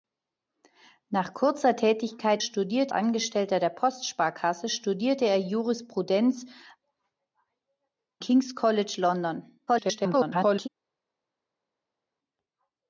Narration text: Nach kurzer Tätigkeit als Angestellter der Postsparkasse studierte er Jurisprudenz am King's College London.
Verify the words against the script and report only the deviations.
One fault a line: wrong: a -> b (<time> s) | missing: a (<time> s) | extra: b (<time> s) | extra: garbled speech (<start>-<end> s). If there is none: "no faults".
wrong: als -> studierte (2.4 s)
missing: am (6.5 s)
extra: garbled speech (9.7-10.7 s)